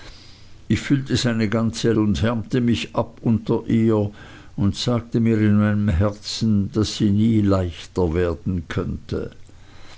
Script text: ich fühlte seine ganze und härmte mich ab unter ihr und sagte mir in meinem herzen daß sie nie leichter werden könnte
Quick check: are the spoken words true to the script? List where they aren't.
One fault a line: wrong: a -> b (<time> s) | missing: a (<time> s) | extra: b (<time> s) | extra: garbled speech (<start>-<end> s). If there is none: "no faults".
no faults